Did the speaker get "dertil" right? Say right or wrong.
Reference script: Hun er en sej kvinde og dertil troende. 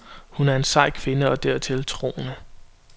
right